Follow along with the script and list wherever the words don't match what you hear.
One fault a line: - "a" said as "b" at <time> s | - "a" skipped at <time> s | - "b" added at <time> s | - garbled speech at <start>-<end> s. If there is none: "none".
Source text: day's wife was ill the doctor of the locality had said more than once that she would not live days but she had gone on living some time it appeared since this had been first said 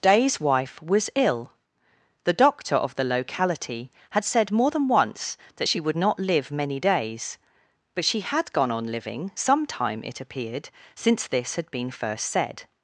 - "many" added at 6.5 s